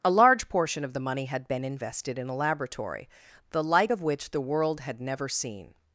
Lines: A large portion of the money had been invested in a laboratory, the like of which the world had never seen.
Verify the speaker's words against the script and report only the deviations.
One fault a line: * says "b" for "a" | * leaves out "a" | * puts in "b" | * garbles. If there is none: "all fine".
all fine